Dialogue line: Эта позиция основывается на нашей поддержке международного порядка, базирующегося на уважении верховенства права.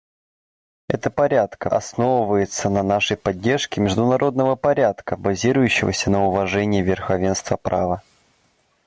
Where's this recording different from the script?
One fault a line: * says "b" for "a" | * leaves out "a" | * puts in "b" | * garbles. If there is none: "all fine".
* says "порядка" for "позиция"